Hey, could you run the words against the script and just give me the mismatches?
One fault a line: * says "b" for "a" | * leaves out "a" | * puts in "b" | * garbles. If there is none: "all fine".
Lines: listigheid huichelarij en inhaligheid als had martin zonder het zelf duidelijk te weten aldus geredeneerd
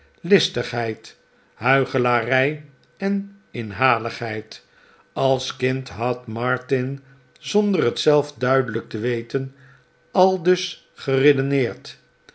* puts in "kind"